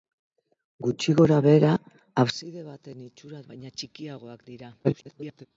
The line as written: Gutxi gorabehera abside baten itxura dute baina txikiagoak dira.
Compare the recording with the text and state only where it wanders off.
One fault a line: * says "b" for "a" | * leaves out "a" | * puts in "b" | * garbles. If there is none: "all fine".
* leaves out "dute"
* garbles